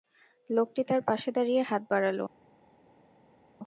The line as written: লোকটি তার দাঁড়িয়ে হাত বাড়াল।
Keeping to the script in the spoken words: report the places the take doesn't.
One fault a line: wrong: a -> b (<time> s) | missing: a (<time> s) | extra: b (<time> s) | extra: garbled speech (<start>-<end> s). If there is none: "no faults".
extra: পাশে (1.1 s)